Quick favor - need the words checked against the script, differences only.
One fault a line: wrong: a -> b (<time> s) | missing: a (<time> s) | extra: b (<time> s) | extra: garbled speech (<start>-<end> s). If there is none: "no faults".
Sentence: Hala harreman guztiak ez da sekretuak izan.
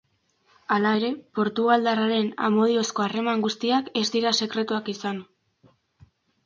extra: ere portugaldarraren amodiozko (1.0 s)
wrong: da -> dira (4.2 s)